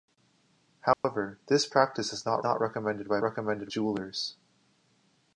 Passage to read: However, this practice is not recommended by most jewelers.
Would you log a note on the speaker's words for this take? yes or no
yes